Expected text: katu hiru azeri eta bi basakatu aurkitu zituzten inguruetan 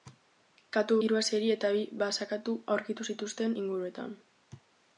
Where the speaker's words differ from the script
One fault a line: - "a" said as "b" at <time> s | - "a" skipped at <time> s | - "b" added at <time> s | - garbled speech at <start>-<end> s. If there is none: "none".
none